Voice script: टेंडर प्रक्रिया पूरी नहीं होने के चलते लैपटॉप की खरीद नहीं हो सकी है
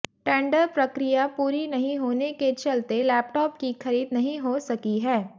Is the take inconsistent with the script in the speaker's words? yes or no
no